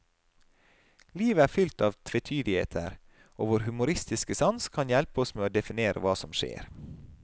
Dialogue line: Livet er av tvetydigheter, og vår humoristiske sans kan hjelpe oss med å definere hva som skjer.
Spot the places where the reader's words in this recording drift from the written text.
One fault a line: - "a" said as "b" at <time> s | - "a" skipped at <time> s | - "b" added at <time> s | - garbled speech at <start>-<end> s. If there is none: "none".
- "fylt" added at 1.5 s